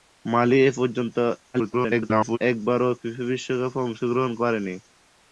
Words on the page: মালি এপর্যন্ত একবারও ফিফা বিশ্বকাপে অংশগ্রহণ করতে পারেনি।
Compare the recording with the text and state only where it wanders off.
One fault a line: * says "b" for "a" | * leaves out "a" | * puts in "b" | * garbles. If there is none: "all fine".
* garbles
* leaves out "করতে"